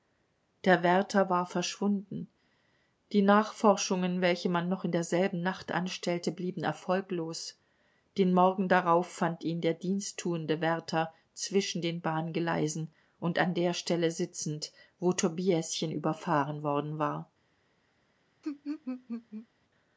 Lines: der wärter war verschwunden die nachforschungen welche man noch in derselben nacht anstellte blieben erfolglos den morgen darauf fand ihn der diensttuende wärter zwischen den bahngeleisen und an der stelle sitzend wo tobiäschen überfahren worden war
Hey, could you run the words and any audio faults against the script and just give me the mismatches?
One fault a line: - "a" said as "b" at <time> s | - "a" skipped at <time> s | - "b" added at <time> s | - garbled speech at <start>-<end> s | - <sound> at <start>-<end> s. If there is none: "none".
- laugh at 18.4-19.5 s